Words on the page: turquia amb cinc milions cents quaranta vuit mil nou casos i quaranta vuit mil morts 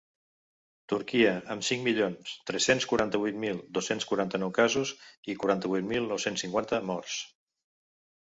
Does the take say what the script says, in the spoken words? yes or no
no